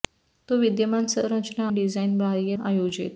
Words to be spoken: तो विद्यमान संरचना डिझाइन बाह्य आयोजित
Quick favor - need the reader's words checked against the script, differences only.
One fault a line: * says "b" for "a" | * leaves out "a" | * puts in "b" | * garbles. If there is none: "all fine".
all fine